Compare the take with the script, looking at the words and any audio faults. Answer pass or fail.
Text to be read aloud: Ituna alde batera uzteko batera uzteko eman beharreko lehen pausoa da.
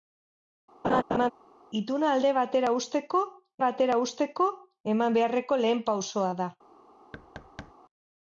fail